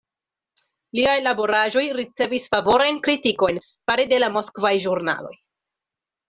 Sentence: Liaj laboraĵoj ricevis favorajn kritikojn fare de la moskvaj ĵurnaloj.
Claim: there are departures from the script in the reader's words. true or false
false